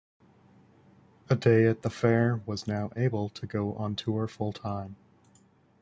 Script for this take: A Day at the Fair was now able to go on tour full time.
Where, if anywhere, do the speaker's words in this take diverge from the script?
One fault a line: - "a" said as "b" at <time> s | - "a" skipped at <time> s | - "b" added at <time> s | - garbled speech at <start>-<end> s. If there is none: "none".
none